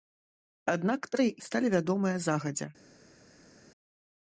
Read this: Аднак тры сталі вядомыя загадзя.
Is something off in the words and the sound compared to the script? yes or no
no